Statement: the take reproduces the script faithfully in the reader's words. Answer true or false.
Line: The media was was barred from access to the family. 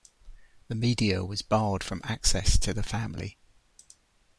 false